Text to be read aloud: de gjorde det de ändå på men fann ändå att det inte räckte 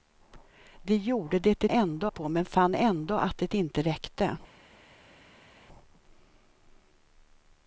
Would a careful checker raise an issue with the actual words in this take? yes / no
no